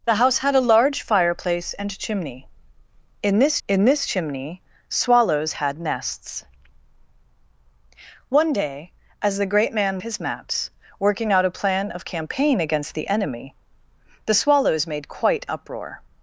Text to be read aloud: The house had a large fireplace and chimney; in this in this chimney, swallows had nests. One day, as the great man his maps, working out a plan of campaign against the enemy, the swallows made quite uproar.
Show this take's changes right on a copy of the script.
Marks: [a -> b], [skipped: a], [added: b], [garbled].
The house had a large fireplace and chimney; in this in this chimney, swallows had nests. One day, as the great man his maps, working out a plan of campaign against the enemy, the swallows made quite uproar.